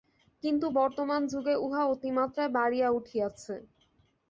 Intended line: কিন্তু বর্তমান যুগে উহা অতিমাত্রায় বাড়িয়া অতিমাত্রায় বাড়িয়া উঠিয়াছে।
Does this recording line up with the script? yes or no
no